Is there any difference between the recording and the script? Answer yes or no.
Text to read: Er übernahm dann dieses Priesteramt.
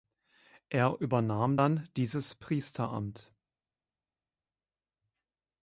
no